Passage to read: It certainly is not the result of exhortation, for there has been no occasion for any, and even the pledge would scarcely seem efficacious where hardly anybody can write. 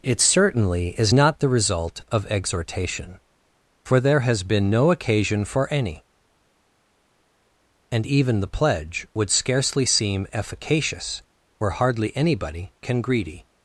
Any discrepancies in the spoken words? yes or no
yes